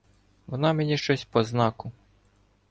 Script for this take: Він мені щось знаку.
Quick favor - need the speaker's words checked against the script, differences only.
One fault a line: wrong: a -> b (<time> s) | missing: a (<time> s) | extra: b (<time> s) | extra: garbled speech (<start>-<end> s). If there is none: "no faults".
wrong: Він -> Вона (0.5 s)
extra: по (1.2 s)